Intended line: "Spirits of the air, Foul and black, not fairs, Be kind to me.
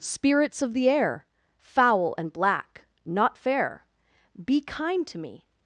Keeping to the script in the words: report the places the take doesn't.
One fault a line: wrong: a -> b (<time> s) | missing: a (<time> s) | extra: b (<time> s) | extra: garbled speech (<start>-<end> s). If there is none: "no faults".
wrong: fairs -> fair (3.4 s)